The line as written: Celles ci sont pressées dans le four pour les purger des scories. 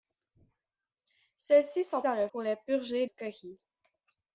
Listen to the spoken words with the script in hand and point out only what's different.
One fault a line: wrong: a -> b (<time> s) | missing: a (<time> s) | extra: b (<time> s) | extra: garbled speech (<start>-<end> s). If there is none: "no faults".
missing: pressées (2.0 s)
missing: four (2.3 s)
missing: des (3.1 s)